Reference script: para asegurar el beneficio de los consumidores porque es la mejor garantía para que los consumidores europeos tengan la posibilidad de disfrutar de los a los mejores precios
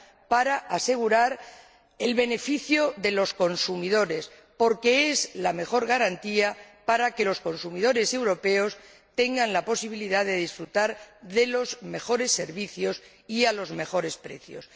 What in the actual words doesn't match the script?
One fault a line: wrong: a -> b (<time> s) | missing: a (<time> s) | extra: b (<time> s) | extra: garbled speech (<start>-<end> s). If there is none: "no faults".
extra: mejores servicios y (11.8 s)